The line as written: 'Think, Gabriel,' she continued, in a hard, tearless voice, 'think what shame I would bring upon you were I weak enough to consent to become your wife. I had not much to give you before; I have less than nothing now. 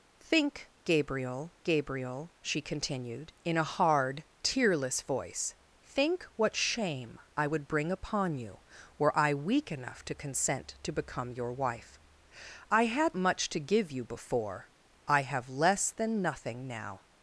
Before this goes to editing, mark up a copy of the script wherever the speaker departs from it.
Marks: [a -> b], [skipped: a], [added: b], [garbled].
'Think, Gabriel,' [added: Gabriel] she continued, in a hard, tearless voice, 'think what shame I would bring upon you were I weak enough to consent to become your wife. I had [skipped: not] much to give you before; I have less than nothing now.